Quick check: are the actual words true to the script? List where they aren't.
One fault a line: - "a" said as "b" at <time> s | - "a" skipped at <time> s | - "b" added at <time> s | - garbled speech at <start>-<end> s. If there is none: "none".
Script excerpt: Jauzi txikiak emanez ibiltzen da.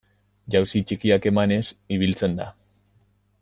none